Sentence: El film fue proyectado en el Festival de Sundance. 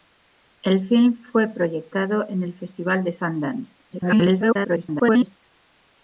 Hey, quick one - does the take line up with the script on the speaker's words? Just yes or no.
no